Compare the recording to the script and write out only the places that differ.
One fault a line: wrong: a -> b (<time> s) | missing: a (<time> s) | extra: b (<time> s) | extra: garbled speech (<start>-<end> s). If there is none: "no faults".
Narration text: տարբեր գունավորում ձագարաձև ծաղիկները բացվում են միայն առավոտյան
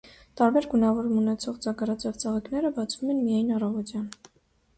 extra: ունեցող (1.2 s)